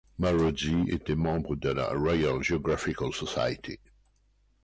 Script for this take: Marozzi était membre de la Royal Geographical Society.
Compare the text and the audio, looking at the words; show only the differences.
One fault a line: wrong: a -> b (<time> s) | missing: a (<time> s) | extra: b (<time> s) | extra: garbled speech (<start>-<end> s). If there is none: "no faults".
no faults